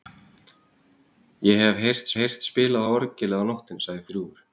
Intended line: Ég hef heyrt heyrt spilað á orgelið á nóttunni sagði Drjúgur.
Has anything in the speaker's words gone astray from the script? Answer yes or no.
no